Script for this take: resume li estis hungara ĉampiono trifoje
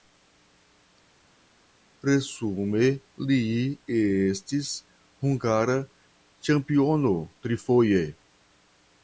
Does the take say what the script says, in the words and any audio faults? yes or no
yes